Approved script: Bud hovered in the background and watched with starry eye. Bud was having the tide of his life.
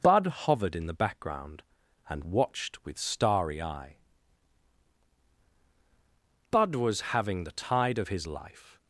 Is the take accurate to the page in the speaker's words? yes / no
yes